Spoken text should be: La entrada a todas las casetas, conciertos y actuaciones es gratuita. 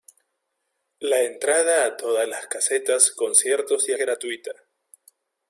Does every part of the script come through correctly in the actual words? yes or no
no